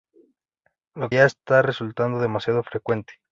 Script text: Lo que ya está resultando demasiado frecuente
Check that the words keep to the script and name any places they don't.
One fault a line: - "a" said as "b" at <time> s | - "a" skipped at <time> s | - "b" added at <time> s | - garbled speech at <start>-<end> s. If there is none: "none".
- "que" skipped at 1.1 s